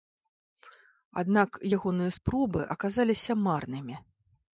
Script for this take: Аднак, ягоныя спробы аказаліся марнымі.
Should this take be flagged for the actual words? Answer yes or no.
no